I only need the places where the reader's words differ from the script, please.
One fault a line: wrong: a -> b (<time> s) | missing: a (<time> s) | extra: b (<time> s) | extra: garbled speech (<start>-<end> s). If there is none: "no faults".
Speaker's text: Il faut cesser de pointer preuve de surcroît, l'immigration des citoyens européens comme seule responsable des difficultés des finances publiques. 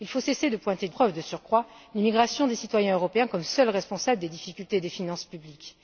no faults